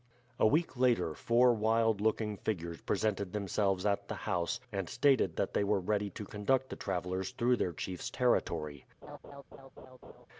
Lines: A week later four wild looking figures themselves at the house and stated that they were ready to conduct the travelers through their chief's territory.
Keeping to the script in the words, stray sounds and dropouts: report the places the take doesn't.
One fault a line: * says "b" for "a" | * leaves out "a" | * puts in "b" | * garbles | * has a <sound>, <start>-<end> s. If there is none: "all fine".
* puts in "presented"
* has a laugh, 9.0-10.3 s